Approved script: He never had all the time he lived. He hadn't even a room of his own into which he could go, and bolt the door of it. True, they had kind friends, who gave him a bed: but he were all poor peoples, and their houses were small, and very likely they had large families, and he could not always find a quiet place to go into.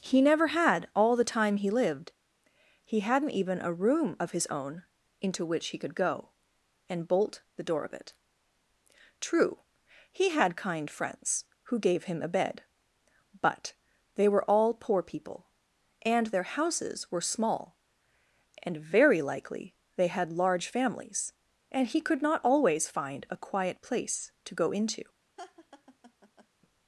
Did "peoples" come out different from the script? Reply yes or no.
yes